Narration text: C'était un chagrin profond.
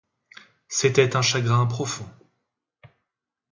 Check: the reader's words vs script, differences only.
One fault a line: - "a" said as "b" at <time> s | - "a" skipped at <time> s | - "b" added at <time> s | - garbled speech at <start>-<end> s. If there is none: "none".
none